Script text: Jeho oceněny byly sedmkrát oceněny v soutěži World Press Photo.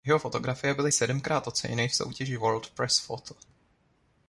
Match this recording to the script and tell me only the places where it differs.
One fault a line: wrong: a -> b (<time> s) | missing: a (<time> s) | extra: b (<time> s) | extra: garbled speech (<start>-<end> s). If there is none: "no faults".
wrong: oceněny -> fotografie (0.2 s)